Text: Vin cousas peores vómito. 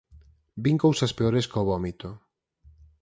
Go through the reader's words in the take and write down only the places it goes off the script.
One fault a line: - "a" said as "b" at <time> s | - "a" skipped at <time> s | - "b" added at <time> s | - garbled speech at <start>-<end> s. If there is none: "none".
- "có" added at 1.5 s